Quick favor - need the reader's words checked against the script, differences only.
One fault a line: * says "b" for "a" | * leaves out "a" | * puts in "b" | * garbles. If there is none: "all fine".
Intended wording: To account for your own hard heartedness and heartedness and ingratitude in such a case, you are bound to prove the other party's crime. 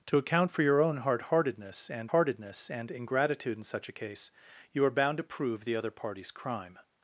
all fine